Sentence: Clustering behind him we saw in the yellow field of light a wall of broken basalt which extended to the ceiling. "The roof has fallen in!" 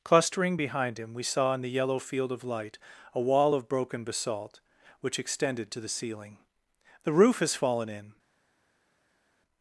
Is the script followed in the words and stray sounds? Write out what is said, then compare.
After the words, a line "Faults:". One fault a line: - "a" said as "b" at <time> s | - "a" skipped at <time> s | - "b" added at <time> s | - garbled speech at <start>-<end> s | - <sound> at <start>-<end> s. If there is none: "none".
Clustering behind him we saw in the yellow field of light a wall of broken basalt which extended to the ceiling. "The roof has fallen in!"
Faults:
none